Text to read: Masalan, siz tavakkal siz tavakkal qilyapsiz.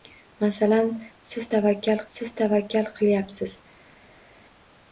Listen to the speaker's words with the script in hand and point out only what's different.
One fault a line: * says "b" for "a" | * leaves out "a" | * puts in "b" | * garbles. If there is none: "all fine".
all fine